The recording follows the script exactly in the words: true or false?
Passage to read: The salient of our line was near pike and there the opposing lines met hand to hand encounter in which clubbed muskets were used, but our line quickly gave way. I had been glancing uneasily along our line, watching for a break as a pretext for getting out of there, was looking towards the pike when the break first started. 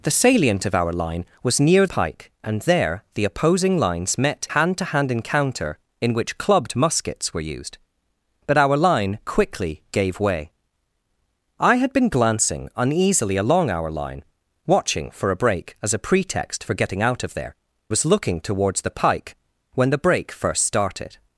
true